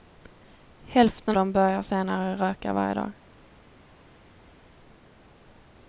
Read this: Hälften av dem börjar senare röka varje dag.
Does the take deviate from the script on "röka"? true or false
false